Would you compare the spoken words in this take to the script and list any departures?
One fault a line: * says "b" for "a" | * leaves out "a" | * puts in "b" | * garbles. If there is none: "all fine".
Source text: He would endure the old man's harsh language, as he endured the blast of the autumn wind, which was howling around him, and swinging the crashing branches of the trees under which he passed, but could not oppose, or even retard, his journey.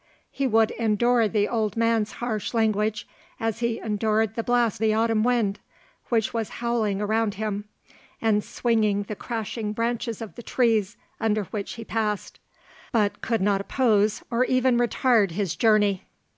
* leaves out "of"